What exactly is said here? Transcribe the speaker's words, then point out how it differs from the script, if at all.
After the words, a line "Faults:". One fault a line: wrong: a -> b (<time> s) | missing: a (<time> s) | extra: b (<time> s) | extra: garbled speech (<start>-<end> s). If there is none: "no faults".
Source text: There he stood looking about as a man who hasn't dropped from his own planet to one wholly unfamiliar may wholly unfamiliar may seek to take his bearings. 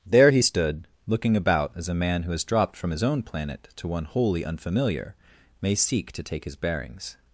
There he stood looking about as a man who has dropped from his own planet to one wholly unfamiliar may seek to take his bearings.
Faults:
wrong: hasn't -> has (2.3 s)
missing: wholly unfamiliar may (5.8 s)